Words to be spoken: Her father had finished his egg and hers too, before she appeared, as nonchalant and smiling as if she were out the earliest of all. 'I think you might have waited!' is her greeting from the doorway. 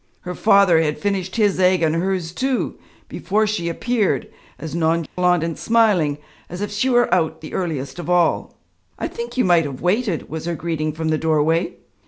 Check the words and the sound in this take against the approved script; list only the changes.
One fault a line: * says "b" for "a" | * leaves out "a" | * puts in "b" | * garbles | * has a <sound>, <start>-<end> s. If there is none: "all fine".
* has a dropout, 5.1-5.2 s
* says "was" for "is"